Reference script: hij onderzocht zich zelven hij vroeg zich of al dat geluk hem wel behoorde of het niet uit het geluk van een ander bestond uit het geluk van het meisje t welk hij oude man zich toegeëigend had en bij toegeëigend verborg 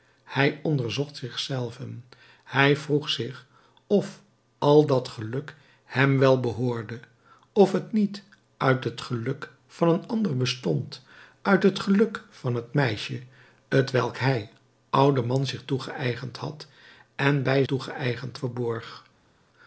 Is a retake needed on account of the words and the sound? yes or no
no